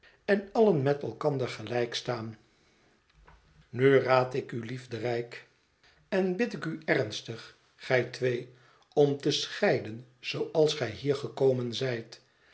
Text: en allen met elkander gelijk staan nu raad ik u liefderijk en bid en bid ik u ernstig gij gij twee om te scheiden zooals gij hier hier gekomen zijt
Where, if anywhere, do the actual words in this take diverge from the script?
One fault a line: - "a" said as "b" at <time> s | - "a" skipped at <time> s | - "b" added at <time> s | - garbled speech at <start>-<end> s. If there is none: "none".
- "en bid" skipped at 6.5 s
- "gij" skipped at 8.0 s
- "hier" skipped at 11.2 s